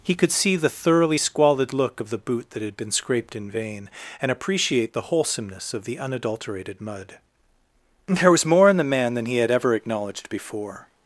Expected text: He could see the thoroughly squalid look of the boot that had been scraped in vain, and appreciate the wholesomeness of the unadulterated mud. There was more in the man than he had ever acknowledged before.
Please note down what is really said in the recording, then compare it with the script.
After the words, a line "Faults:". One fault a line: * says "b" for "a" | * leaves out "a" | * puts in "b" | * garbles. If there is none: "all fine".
He could see the thoroughly squalid look of the boot that had been scraped in vain, and appreciate the wholesomeness of the unadulterated mud. There was more in the man than he had ever acknowledged before.
Faults:
all fine